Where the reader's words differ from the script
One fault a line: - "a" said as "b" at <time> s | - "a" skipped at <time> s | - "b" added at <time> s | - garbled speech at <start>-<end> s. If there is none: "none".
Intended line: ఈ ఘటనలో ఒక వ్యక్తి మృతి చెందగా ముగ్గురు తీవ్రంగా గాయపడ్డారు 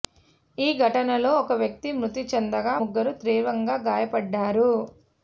none